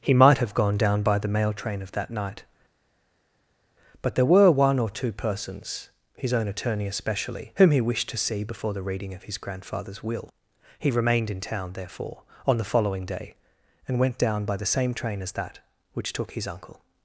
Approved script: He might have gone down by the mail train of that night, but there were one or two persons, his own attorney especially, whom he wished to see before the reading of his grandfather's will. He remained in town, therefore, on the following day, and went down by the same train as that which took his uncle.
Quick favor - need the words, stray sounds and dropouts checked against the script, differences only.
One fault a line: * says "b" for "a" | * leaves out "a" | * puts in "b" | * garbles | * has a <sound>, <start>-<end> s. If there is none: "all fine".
all fine